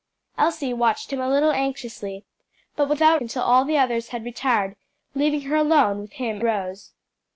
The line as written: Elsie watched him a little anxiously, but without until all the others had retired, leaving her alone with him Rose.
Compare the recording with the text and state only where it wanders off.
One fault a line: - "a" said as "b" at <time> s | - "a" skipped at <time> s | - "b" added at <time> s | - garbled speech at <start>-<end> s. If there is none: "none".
none